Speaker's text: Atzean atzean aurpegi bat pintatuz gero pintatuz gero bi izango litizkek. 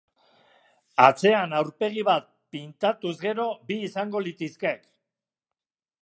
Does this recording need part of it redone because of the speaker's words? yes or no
yes